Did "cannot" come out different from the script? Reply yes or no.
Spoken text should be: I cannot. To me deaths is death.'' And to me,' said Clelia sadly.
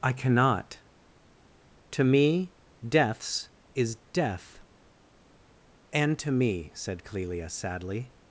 no